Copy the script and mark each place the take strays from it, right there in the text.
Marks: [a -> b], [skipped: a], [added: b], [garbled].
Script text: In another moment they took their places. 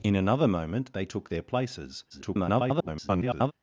In another moment they took their places. [garbled]